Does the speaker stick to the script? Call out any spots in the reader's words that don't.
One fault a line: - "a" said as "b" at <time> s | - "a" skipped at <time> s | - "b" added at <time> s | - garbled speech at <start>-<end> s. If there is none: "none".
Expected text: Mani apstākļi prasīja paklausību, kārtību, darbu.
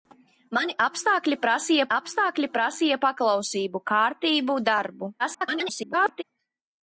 - "apstākļi prasīja" added at 2.0 s
- garbled speech at 5.2-6.2 s